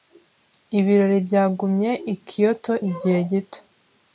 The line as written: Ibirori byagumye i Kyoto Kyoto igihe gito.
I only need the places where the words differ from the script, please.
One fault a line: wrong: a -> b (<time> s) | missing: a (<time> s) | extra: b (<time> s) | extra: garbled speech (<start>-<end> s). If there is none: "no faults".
missing: Kyoto (2.7 s)